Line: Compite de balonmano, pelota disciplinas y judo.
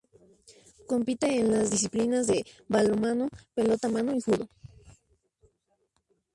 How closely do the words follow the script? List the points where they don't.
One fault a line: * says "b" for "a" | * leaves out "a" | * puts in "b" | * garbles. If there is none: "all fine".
* puts in "en las disciplinas"
* says "mano" for "disciplinas"